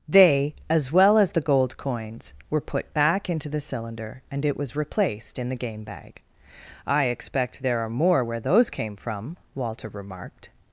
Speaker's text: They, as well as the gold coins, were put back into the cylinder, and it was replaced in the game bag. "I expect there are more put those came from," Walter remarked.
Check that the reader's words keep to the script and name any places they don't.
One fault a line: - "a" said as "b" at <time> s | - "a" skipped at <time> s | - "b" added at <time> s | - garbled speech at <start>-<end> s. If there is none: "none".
- "put" said as "where" at 8.2 s